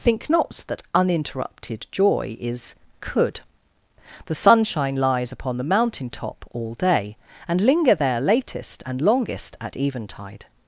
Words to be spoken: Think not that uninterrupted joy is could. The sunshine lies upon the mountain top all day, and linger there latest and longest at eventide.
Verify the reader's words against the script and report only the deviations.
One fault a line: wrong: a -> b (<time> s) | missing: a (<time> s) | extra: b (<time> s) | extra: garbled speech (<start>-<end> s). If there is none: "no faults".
no faults